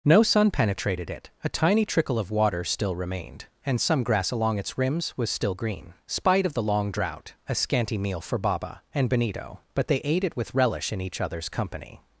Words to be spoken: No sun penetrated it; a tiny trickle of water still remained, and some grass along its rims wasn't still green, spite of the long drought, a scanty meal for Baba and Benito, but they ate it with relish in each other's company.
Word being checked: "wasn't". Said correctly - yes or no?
no